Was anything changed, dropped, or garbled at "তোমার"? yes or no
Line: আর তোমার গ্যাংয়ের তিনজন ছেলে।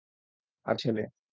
yes